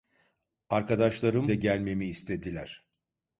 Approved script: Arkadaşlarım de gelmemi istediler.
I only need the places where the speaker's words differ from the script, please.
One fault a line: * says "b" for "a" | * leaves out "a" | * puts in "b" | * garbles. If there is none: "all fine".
all fine